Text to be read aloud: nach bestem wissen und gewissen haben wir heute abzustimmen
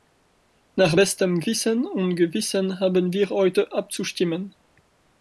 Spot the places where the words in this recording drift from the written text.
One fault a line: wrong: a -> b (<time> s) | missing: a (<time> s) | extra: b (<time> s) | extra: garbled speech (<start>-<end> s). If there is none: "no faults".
no faults